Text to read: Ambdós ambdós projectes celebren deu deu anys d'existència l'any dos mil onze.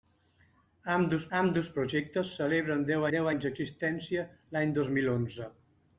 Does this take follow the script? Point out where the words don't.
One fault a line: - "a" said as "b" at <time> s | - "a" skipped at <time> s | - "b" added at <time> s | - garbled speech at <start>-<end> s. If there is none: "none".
none